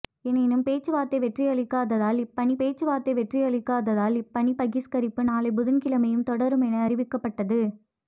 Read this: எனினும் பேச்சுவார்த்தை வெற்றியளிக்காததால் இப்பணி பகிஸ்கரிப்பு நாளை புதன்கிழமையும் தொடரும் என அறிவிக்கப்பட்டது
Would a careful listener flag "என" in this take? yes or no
no